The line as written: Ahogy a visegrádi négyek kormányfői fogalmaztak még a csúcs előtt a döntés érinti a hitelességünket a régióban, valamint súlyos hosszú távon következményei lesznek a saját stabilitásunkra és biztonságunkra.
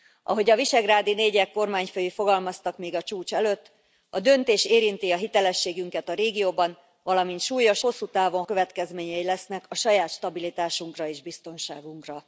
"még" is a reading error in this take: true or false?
false